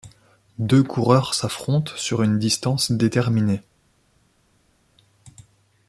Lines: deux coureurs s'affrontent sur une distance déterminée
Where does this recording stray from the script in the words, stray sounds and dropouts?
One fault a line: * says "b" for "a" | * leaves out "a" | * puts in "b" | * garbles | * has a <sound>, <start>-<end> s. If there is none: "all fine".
all fine